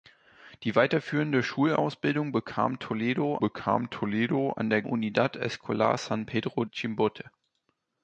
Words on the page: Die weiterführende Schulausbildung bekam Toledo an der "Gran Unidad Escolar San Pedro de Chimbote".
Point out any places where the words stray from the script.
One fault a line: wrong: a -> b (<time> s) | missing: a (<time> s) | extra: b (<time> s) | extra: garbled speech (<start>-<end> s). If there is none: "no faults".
extra: bekam Toledo (3.4 s)
missing: Gran (4.8 s)
missing: de (6.6 s)